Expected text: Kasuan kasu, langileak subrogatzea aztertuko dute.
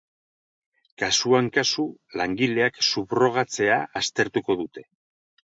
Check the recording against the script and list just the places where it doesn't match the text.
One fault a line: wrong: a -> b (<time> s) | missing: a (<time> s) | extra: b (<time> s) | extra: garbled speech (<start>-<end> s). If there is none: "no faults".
no faults